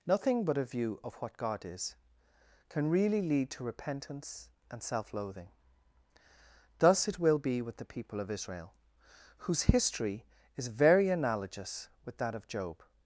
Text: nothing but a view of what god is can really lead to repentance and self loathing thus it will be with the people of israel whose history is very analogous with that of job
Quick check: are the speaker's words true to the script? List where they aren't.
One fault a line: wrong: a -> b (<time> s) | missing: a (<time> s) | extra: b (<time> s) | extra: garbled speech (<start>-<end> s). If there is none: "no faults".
no faults